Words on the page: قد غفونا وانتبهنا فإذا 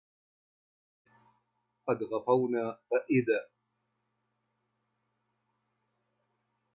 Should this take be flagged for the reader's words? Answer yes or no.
yes